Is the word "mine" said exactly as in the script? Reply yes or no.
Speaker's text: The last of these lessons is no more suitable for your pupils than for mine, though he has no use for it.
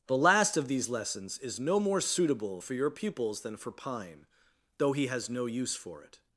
no